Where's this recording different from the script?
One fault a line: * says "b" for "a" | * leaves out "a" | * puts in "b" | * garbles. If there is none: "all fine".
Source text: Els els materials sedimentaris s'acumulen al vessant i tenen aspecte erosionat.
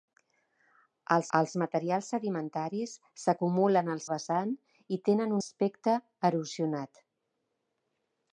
all fine